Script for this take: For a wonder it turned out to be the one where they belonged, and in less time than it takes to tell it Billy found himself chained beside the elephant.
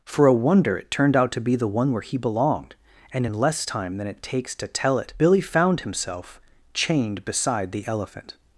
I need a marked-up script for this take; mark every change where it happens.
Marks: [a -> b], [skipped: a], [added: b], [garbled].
For a wonder it turned out to be the one where [they -> he] belonged, and in less time than it takes to tell it Billy found himself chained beside the elephant.